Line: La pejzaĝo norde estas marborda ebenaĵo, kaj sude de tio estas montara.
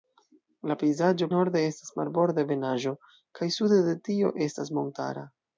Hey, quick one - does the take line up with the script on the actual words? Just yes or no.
yes